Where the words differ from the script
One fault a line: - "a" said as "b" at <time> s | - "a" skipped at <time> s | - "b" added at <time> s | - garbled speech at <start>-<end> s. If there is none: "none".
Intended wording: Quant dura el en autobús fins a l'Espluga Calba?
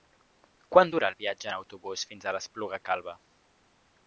- "viatge" added at 1.2 s